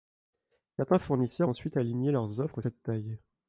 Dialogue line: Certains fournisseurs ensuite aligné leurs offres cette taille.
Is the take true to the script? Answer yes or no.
yes